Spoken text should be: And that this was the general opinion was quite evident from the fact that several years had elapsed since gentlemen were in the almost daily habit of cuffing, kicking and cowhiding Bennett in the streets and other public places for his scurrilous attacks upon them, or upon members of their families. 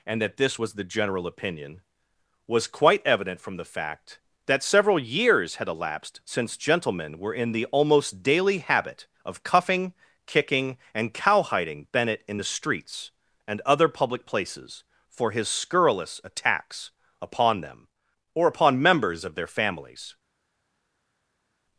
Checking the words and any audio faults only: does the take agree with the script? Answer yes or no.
yes